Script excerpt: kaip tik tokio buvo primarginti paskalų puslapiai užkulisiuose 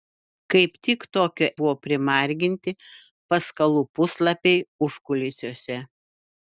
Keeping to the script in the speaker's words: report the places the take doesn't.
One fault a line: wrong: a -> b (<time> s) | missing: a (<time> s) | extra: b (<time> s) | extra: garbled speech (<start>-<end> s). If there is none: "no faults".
no faults